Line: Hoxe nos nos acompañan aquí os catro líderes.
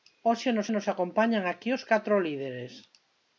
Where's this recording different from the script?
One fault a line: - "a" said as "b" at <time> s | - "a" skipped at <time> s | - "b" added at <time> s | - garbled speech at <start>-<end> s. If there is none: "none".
none